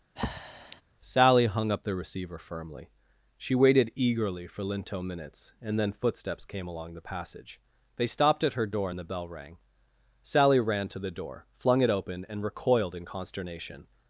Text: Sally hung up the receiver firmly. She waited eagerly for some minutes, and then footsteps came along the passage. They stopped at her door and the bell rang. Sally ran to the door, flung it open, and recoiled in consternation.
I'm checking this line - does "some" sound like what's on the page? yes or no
no